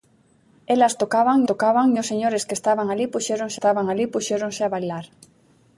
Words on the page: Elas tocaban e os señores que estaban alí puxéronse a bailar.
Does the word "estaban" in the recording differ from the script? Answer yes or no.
no